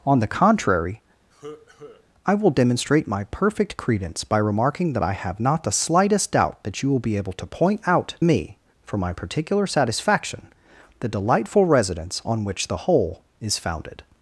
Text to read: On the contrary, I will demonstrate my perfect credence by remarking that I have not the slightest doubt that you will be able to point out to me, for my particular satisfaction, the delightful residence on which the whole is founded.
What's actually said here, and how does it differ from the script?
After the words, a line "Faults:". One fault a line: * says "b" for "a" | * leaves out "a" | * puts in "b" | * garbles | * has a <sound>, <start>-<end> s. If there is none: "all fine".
On the contrary, I will demonstrate my perfect credence by remarking that I have not the slightest doubt that you will be able to point out me, for my particular satisfaction, the delightful residence on which the whole is founded.
Faults:
* has a cough, 1.3-2.1 s
* leaves out "to"